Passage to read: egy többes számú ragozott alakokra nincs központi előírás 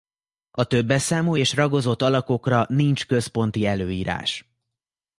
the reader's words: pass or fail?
fail